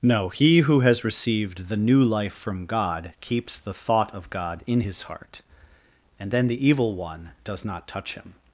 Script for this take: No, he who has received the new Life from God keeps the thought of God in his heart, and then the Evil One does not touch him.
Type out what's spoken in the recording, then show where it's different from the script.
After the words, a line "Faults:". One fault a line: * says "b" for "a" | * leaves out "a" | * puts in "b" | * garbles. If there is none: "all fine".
No, he who has received the new Life from God keeps the thought of God in his heart, and then the Evil One does not touch him.
Faults:
all fine